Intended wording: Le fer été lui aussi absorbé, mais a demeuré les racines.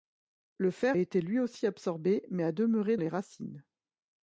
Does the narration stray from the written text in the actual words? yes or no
no